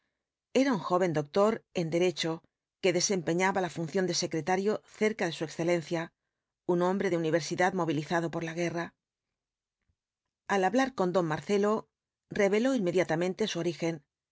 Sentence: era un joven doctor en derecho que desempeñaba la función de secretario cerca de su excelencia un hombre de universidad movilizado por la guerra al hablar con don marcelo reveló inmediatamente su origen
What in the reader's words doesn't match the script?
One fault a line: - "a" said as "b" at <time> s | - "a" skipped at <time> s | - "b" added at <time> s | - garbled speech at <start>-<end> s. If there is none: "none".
none